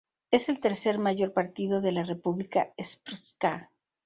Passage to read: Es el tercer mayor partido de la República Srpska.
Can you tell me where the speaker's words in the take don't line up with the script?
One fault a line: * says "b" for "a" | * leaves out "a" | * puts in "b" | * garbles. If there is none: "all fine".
all fine